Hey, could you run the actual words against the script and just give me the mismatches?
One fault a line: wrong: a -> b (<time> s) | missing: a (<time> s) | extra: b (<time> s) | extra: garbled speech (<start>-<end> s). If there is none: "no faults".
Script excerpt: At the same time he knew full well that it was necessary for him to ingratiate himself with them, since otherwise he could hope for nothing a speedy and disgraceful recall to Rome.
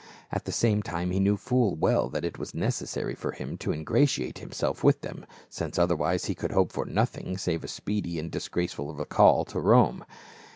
extra: save (7.4 s)